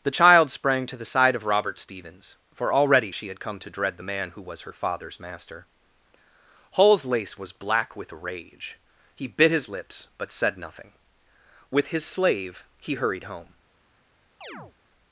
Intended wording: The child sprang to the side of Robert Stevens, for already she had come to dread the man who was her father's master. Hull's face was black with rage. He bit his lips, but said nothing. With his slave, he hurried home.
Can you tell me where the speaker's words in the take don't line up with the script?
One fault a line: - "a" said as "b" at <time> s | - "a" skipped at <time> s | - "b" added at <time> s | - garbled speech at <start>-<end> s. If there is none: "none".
- "face" said as "lace" at 7.0 s